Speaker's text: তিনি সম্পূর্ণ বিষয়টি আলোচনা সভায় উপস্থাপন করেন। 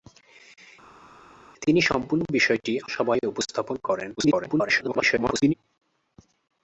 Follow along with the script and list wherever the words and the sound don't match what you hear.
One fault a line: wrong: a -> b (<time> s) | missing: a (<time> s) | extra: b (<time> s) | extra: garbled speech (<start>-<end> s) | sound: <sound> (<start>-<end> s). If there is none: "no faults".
missing: আলোচনা (2.7 s)
extra: garbled speech (4.2-5.5 s)